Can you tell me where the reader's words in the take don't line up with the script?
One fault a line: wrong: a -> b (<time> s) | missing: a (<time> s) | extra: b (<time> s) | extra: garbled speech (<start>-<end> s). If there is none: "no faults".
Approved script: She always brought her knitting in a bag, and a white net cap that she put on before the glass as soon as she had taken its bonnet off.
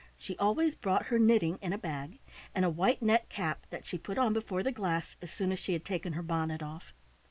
wrong: its -> her (6.1 s)